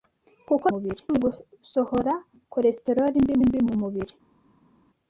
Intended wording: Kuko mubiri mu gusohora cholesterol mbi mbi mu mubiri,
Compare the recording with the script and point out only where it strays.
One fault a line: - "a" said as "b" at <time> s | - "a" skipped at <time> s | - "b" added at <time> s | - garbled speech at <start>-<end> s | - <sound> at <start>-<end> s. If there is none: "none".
none